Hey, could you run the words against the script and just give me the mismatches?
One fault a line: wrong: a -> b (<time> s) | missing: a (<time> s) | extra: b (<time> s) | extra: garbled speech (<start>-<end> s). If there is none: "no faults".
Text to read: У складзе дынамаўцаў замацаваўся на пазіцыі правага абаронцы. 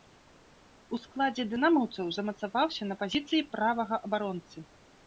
no faults